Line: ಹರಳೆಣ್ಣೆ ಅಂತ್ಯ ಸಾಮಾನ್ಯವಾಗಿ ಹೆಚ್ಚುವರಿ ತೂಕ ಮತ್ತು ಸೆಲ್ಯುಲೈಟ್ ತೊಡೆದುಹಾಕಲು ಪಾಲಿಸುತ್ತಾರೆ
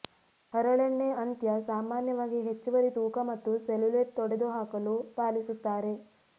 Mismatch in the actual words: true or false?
false